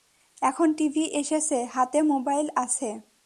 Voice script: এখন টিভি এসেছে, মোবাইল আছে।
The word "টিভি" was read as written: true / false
true